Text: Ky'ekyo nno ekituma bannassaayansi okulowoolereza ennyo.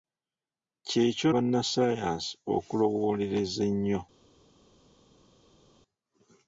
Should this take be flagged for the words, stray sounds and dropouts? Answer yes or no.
yes